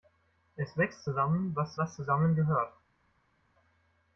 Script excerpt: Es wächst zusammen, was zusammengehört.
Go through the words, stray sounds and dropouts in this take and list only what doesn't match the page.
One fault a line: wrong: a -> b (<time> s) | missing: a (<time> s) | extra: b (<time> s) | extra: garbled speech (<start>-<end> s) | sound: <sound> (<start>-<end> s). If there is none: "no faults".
extra: was (1.8 s)